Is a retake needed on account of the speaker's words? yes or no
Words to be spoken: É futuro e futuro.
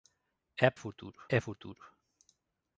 no